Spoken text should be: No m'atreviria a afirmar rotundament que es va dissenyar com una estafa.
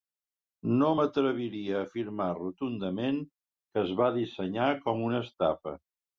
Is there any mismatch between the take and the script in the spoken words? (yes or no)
no